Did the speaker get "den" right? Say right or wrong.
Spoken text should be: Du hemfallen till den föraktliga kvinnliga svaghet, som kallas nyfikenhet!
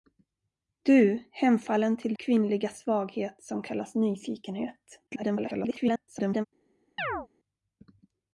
wrong